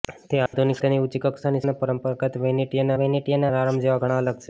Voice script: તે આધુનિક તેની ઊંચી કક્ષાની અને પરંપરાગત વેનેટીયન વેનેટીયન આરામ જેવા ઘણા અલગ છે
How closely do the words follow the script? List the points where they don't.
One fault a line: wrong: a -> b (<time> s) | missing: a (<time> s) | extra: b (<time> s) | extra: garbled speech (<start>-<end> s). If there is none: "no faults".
no faults